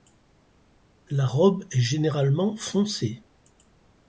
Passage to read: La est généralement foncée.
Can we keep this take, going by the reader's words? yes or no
no